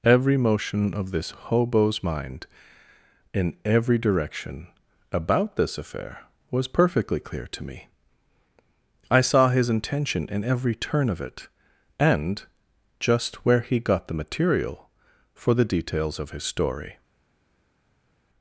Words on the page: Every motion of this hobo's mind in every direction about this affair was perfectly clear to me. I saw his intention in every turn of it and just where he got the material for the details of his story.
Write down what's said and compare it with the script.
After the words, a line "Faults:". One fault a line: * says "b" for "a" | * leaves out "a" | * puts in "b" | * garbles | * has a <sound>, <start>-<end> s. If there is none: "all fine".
Every motion of this hobo's mind in every direction about this affair was perfectly clear to me. I saw his intention in every turn of it and just where he got the material for the details of his story.
Faults:
all fine